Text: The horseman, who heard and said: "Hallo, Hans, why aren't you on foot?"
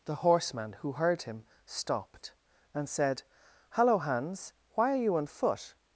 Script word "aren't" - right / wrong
wrong